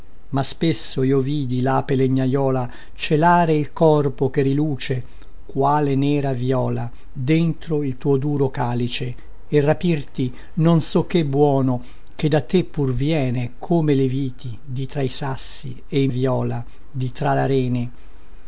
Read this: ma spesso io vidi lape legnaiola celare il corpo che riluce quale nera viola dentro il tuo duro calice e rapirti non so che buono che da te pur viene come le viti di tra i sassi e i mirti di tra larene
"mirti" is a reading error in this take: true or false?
true